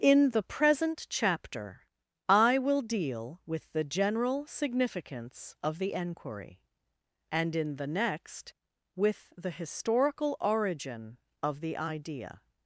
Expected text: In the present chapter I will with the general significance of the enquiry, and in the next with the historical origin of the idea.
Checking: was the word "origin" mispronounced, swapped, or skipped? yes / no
no